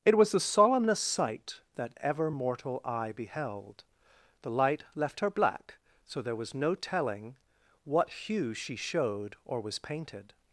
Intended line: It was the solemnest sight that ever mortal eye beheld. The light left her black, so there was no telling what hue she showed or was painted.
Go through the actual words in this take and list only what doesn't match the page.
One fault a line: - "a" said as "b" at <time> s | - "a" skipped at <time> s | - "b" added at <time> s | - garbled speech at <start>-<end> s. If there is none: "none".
none